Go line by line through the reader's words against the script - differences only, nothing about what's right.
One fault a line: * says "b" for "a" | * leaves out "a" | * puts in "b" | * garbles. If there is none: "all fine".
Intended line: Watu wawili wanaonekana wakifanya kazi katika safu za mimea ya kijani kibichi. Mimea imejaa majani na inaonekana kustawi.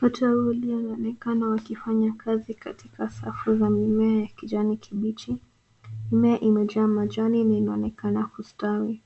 all fine